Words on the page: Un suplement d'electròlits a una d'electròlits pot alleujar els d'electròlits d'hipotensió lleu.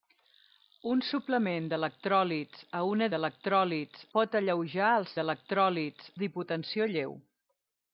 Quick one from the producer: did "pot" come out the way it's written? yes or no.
yes